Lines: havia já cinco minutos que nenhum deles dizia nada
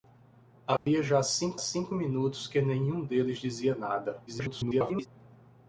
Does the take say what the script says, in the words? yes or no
no